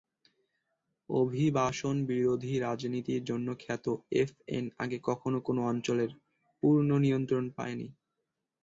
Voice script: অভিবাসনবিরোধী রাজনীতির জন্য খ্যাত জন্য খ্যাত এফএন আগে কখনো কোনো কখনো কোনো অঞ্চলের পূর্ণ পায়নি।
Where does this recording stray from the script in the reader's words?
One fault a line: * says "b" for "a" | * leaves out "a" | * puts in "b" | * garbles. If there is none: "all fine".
* leaves out "জন্য খ্যাত"
* leaves out "কখনো কোনো"
* puts in "নিয়ন্ত্রণ"